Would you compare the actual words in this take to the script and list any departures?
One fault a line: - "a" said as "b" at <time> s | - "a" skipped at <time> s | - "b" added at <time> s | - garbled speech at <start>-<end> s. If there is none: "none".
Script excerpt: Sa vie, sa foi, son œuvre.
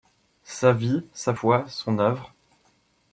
none